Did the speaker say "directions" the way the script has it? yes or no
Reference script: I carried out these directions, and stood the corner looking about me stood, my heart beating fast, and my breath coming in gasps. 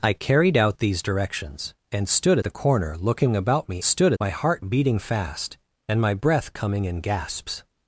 yes